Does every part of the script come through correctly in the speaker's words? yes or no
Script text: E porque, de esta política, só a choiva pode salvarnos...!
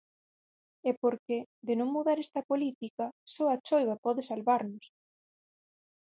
no